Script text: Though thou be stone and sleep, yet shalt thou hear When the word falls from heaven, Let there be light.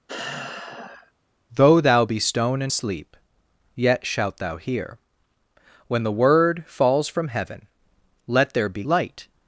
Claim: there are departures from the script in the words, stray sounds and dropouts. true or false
true